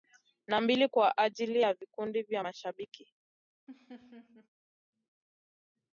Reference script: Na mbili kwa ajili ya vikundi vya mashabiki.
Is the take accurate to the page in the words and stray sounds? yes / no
no